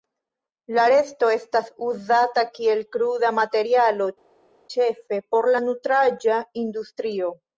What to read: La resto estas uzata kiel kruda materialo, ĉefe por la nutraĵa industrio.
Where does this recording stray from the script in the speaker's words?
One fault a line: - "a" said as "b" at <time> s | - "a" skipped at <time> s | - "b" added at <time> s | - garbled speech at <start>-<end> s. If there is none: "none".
none